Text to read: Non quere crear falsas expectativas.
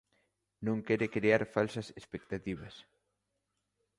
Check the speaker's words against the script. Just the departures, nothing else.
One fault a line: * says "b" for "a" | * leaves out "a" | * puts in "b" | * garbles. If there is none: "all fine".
all fine